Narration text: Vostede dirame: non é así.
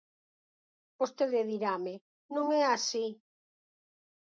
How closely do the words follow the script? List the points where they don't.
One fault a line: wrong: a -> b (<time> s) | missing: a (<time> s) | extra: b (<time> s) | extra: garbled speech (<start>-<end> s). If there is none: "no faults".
no faults